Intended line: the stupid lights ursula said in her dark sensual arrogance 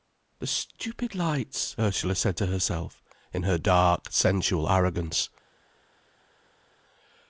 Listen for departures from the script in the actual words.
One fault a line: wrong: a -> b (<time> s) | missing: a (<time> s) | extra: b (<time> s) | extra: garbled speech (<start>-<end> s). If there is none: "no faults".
extra: to herself (2.3 s)